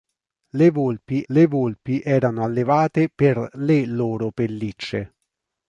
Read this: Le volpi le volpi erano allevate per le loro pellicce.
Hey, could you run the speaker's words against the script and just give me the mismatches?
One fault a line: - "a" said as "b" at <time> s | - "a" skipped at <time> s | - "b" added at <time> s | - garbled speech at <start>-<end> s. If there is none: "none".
none